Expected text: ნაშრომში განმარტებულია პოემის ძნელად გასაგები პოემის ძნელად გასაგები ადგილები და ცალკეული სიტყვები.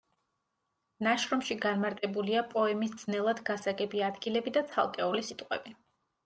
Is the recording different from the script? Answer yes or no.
yes